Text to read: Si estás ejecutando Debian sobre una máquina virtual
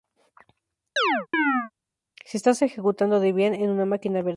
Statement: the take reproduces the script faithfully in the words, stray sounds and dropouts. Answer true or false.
false